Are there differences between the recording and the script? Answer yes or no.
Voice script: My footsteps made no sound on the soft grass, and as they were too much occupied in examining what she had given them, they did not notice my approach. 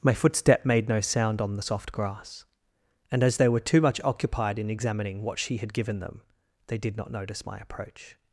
yes